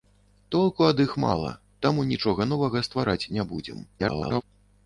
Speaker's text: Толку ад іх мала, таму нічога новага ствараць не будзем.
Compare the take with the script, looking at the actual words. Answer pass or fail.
fail